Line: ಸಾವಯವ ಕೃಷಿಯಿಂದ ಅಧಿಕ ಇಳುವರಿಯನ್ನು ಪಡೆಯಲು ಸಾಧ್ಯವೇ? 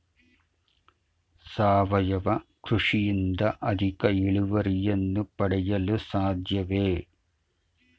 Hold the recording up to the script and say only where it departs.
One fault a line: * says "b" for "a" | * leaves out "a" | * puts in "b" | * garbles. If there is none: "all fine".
all fine